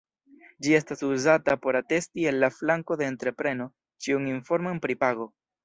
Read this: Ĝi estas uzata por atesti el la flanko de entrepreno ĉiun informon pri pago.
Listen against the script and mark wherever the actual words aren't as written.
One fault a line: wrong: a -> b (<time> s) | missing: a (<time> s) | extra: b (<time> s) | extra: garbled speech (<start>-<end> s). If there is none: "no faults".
no faults